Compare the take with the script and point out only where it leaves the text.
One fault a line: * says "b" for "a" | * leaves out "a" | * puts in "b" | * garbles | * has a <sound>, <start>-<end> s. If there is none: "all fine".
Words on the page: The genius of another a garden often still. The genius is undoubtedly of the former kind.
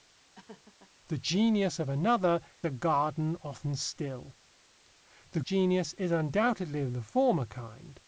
* has a laugh, 0.3-0.9 s